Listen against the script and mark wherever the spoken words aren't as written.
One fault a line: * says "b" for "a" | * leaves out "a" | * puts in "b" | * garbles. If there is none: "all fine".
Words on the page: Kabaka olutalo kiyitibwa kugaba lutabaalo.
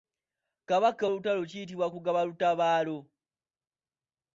all fine